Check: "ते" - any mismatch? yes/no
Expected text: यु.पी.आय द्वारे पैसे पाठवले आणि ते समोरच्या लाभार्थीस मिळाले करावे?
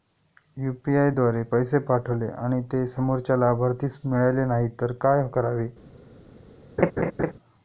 no